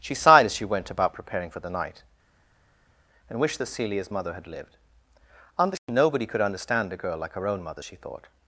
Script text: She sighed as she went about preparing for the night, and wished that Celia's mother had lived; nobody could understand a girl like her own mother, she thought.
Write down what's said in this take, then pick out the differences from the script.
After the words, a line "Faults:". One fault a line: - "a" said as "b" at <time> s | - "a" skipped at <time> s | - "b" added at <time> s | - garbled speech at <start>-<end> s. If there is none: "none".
She sighed as she went about preparing for the night, and wished that Celia's mother had lived; nobody could understand a girl like her own mother, she thought.
Faults:
none